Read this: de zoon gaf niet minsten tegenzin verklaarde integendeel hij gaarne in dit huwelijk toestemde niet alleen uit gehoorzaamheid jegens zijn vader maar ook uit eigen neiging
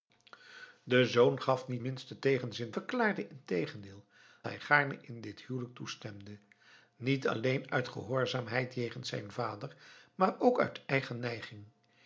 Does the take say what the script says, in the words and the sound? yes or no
yes